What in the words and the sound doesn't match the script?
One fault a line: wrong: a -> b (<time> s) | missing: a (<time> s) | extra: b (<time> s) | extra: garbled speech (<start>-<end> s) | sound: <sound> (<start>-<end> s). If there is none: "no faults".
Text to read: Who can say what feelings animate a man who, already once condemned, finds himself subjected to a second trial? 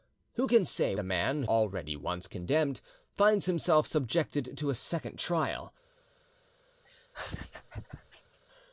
missing: what feelings animate (0.9 s)
missing: who (1.4 s)
sound: laugh (6.8-8.4 s)